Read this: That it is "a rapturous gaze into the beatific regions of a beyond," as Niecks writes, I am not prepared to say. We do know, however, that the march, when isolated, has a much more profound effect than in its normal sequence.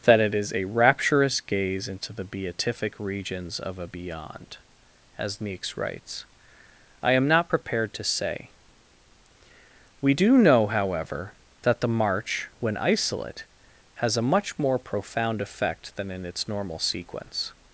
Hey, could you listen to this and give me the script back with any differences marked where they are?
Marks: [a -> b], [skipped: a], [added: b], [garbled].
That it is "a rapturous gaze into the beatific regions of a beyond," as Niecks writes, I am not prepared to say. We do know, however, that the march, when [isolated, -> isolate] has a much more profound effect than in its normal sequence.